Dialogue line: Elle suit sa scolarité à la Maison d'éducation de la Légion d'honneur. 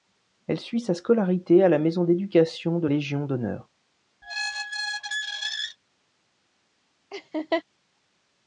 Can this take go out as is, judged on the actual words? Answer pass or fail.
fail